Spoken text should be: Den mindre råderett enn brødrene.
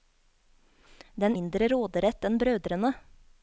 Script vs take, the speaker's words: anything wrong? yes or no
no